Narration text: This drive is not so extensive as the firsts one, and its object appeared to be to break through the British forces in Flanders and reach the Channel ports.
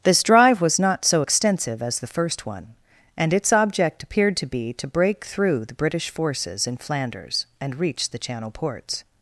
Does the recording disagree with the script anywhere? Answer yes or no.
yes